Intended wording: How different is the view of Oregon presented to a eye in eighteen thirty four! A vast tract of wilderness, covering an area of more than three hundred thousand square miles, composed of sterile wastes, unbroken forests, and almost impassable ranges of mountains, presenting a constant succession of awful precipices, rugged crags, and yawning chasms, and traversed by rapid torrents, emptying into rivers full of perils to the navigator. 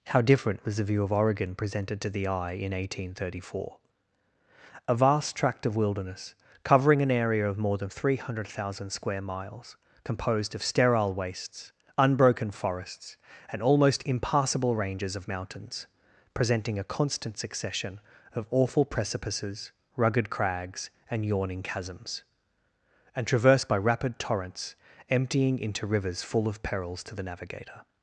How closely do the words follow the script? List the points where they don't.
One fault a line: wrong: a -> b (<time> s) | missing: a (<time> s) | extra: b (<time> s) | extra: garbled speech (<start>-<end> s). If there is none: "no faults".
wrong: is -> was (0.7 s)
wrong: a -> the (2.1 s)